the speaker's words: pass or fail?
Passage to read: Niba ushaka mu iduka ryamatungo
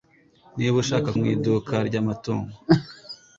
pass